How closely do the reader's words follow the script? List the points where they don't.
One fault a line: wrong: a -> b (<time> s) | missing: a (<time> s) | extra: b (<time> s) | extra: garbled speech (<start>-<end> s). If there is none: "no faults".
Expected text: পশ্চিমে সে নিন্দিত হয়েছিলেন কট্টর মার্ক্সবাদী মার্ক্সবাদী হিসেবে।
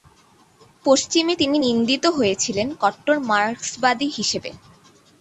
wrong: সে -> তিনি (1.3 s)
missing: মার্ক্সবাদী (4.1 s)